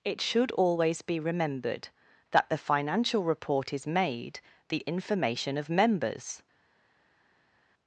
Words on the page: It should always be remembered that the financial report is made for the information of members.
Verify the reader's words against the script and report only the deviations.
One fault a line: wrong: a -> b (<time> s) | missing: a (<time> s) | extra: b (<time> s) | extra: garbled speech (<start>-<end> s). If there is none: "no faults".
missing: for (4.4 s)